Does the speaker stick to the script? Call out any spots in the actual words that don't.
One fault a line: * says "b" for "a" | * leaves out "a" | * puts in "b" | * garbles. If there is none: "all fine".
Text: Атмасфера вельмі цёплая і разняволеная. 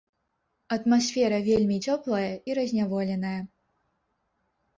all fine